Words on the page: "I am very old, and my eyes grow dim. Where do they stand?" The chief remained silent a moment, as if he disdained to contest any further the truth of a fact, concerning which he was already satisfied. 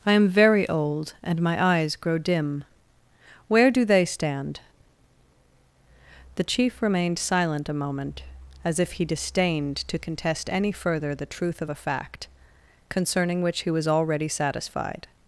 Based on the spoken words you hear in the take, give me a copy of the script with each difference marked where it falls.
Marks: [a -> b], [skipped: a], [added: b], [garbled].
"I am very old, and my eyes grow dim. Where do they stand?" The chief remained silent a moment, as if he disdained to contest any further the truth of a fact, concerning which he was already satisfied.